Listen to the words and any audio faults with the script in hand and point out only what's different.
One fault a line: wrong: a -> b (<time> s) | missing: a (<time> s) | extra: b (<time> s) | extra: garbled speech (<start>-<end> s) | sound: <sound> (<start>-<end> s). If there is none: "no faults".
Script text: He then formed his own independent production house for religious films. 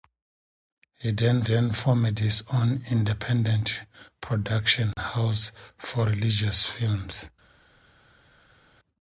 extra: then (1.4 s)